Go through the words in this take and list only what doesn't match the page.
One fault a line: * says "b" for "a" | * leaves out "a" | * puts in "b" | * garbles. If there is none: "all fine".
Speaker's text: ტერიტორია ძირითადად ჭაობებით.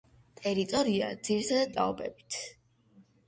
all fine